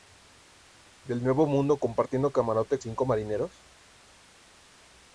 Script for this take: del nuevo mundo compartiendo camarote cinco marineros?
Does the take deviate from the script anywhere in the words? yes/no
no